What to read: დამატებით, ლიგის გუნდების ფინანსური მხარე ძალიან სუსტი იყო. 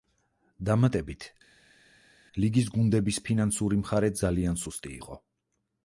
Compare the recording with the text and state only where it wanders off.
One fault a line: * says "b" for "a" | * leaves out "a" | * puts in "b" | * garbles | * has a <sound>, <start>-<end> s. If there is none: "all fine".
all fine